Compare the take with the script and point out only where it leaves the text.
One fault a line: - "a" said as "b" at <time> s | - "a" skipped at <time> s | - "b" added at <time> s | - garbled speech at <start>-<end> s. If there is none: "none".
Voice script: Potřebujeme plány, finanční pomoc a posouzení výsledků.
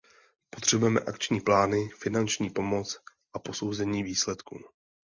- "akční" added at 1.0 s